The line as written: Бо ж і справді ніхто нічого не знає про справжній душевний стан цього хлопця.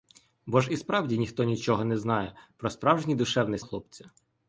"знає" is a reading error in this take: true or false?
false